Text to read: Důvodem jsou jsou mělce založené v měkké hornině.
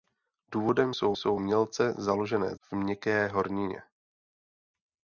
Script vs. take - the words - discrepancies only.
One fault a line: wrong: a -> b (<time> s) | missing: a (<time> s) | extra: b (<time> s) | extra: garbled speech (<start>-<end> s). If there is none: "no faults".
no faults